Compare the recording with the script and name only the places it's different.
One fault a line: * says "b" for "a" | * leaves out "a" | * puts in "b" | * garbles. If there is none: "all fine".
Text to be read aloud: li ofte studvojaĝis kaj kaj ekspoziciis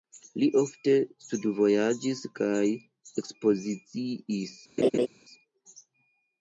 * leaves out "kaj"